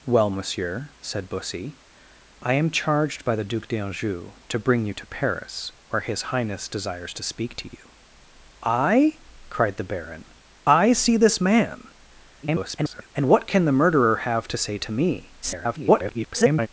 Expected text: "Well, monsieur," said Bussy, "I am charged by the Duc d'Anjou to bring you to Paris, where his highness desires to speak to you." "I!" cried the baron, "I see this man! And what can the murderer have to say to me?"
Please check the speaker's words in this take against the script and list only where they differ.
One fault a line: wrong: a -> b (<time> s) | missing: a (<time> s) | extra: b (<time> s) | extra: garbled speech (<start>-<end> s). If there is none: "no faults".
extra: garbled speech (12.4-13.1 s)
extra: garbled speech (15.4-16.7 s)